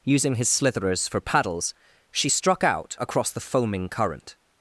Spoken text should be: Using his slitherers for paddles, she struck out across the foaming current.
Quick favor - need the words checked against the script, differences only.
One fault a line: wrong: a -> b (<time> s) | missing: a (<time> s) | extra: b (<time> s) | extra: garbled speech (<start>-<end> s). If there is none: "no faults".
no faults